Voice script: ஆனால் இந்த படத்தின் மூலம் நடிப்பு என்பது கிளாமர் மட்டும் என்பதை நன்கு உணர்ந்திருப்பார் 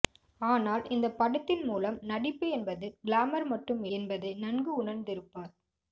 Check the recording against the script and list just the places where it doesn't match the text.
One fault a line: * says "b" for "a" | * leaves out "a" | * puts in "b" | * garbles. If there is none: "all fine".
all fine